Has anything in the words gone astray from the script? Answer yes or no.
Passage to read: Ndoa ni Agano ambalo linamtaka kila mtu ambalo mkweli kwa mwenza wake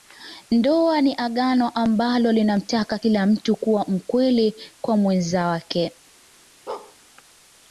yes